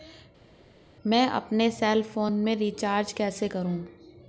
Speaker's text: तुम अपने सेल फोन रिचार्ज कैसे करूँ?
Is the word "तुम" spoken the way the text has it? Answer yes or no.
no